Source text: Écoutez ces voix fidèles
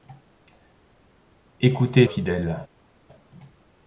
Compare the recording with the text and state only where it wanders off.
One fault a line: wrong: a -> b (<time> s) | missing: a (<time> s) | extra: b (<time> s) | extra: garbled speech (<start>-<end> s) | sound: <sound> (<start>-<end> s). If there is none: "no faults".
missing: ces voix (2.1 s)